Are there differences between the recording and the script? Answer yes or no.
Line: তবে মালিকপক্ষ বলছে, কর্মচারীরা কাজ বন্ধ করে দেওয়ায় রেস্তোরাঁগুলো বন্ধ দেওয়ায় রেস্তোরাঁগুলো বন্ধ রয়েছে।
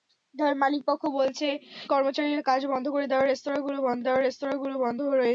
no